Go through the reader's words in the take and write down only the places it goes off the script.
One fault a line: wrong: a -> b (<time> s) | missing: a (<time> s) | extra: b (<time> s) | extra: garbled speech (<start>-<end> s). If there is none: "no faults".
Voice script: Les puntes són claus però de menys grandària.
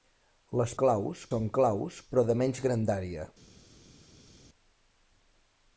wrong: puntes -> claus (0.8 s)